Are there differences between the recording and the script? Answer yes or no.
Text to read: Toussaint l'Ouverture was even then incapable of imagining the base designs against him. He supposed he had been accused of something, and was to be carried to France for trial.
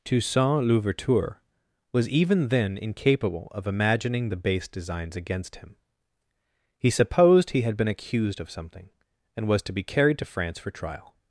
no